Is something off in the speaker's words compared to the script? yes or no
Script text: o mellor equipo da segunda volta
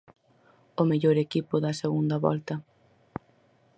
no